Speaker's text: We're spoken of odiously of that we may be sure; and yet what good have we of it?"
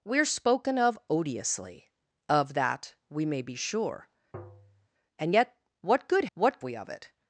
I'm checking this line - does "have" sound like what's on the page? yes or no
no